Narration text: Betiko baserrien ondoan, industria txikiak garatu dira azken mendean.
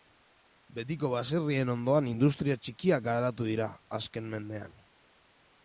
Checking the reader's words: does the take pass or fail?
pass